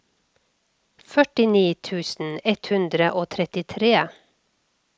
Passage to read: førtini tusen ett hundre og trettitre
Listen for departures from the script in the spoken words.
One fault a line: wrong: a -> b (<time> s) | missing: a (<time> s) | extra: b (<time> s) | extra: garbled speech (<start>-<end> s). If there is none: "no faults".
no faults